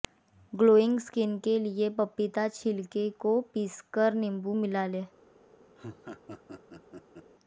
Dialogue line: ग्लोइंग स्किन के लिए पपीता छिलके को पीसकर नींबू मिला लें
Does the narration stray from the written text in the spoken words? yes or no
no